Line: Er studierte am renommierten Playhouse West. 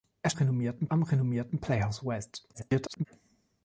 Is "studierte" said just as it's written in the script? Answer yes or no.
no